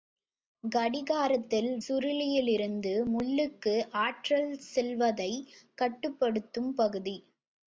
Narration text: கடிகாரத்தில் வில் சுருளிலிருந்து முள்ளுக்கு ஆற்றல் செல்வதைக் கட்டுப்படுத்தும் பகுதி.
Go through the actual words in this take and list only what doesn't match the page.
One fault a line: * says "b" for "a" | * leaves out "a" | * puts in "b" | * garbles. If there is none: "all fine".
* leaves out "வில்"